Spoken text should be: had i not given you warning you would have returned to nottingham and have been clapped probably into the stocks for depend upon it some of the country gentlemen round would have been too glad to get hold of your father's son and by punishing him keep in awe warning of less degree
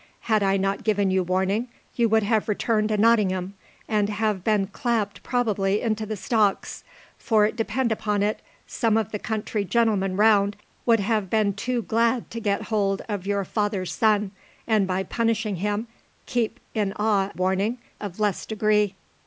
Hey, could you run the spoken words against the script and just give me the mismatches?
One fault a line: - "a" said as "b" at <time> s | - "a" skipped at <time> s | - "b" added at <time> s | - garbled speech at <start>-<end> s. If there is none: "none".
none